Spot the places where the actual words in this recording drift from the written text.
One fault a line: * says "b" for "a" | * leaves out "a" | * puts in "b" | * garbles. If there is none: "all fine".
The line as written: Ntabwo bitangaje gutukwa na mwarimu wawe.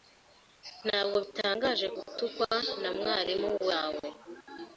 all fine